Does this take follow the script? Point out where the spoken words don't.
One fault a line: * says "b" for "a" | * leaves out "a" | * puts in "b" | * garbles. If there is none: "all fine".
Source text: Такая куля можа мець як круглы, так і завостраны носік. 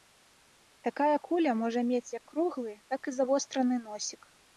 all fine